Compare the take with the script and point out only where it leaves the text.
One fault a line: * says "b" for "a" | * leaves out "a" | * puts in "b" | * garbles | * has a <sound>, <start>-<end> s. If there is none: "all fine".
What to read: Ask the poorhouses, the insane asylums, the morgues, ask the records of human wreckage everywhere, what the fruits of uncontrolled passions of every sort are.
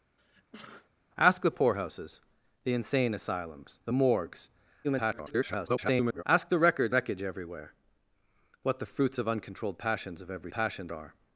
* has a sneeze, 0.2-0.9 s
* garbles
* leaves out "of human"
* says "passions" for "sort"